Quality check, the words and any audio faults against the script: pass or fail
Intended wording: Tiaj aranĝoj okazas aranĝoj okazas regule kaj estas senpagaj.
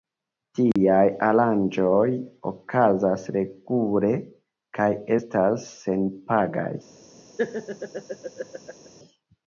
fail